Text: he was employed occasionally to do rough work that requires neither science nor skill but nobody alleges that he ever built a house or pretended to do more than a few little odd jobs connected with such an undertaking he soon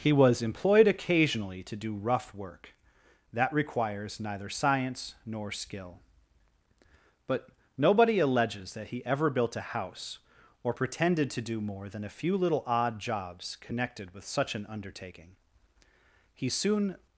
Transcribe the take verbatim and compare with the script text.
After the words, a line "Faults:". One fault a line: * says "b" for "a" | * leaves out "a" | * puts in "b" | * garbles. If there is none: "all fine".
he was employed occasionally to do rough work that requires neither science nor skill but nobody alleges that he ever built a house or pretended to do more than a few little odd jobs connected with such an undertaking he soon
Faults:
all fine